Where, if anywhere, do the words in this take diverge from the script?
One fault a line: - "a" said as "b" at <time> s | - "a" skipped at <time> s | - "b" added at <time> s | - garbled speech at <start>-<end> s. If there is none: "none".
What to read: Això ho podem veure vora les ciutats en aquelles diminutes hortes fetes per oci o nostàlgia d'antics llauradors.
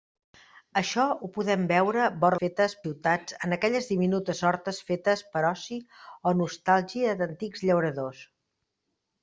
- "les" said as "fetes" at 2.4 s